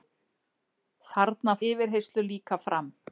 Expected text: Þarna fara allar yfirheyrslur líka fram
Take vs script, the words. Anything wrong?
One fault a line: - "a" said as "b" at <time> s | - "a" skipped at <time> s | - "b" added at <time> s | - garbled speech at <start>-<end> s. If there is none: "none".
- "fara allar" skipped at 1.6 s